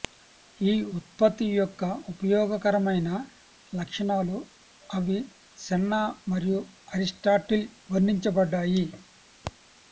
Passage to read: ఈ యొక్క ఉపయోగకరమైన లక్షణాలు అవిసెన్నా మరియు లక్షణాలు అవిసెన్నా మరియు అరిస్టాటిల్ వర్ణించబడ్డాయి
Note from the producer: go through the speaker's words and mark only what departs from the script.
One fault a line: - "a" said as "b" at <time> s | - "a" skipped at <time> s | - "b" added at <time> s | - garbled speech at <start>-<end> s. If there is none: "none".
- "ఉత్పత్తి" added at 1.0 s
- "లక్షణాలు అవిసెన్నా మరియు" skipped at 6.6 s